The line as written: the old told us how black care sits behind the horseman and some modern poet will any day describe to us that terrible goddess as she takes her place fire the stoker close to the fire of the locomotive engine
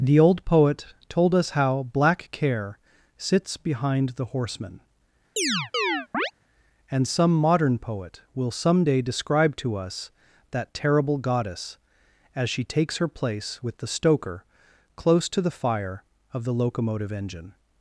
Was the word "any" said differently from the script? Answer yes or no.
yes